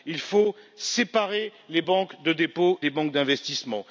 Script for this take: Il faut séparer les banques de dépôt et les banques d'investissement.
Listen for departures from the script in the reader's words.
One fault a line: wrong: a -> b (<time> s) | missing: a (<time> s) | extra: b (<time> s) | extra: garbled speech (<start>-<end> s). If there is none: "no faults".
missing: et (2.8 s)